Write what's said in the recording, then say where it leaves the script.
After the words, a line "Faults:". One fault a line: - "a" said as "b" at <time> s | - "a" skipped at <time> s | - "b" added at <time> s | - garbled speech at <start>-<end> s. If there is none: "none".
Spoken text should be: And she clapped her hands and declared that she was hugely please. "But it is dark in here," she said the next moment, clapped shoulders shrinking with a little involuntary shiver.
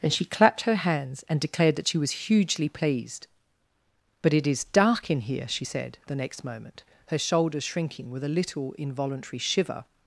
And she clapped her hands and declared that she was hugely pleased. "But it is dark in here," she said the next moment, her shoulders shrinking with a little involuntary shiver.
Faults:
- "please" said as "pleased" at 2.7 s
- "clapped" said as "her" at 7.1 s